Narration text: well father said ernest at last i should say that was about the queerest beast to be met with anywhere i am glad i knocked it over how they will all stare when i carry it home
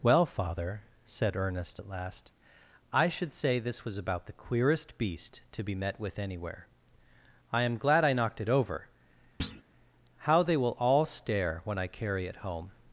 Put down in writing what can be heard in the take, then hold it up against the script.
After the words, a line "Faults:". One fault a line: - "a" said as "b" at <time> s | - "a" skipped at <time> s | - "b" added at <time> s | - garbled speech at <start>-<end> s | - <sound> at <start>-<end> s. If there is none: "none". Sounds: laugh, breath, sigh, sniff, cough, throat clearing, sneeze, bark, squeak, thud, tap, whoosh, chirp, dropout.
well father said ernest at last i should say this was about the queerest beast to be met with anywhere i am glad i knocked it over how they will all stare when i carry it home
Faults:
- "that" said as "this" at 3.6 s
- thud at 9.4-9.6 s